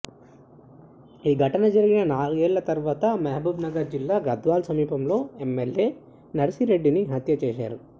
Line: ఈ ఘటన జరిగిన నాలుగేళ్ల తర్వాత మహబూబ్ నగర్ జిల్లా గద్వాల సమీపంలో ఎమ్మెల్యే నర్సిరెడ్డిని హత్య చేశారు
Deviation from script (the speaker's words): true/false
false